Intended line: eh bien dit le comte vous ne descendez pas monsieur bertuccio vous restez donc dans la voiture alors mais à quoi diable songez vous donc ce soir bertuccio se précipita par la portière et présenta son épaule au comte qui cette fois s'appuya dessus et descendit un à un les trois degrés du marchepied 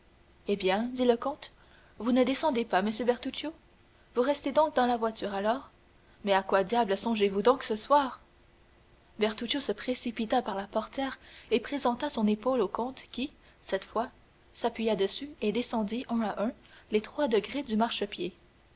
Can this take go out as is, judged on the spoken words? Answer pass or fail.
pass